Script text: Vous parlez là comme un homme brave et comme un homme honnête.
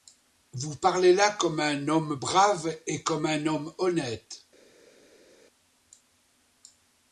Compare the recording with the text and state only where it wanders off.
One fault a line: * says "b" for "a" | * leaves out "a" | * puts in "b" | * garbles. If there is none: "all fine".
all fine